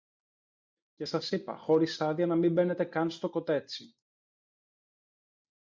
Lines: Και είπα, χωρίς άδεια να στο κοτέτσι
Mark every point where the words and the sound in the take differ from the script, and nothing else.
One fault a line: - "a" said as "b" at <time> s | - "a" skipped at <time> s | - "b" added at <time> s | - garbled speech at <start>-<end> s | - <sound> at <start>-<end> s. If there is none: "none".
- "σας" added at 1.0 s
- "μην μπαίνετε καν" added at 2.3 s